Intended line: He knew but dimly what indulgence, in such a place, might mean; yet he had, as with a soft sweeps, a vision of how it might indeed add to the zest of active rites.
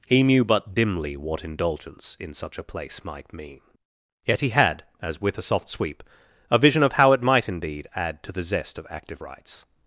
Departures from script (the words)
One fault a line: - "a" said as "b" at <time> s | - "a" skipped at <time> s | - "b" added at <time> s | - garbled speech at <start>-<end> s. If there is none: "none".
- "sweeps" said as "sweep" at 5.7 s